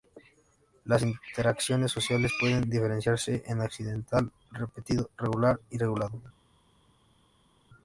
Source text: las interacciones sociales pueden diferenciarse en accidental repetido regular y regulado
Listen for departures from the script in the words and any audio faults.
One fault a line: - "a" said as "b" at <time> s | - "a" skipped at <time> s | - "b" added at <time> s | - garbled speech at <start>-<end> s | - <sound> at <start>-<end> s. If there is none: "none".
none